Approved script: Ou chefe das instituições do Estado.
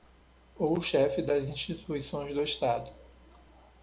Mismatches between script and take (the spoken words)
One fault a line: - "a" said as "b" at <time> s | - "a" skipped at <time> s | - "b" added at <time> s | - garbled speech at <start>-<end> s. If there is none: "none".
none